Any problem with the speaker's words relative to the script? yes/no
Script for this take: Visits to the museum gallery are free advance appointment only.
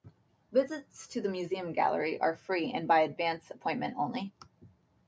yes